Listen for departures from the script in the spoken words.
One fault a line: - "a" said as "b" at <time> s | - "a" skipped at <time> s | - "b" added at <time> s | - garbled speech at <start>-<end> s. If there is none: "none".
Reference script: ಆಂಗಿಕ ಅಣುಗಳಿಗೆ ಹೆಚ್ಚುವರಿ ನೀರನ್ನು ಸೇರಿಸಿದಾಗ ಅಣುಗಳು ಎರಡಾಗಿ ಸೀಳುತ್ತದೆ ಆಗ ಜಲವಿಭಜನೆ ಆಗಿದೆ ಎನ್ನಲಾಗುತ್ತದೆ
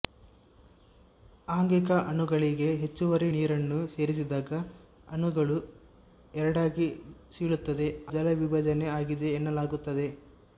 - "ಆಗ" skipped at 7.9 s